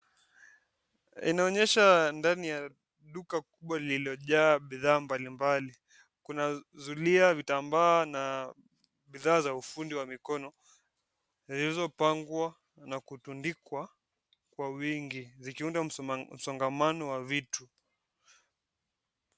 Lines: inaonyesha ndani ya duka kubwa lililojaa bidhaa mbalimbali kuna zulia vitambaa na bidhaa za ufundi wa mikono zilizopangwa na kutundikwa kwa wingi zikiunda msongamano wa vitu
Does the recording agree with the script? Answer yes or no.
yes